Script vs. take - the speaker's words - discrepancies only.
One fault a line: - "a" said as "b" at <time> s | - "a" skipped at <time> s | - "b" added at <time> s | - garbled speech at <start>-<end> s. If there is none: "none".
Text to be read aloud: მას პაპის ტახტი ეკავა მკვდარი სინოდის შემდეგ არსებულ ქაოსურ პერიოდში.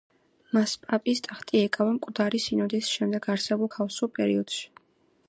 none